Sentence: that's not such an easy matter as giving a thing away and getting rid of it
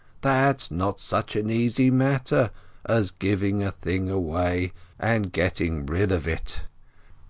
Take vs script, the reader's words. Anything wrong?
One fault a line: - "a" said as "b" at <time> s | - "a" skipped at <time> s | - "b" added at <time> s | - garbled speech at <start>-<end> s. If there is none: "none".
none